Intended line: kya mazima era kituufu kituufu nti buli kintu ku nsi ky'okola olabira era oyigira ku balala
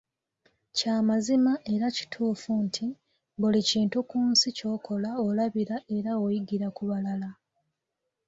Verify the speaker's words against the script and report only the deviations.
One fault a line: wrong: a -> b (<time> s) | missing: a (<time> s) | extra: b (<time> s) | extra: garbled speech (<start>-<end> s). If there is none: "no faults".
missing: kituufu (2.5 s)